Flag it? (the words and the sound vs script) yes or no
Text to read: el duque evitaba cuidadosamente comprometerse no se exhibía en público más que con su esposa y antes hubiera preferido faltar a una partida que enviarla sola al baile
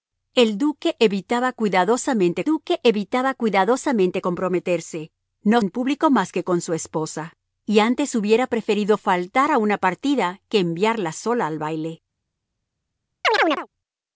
yes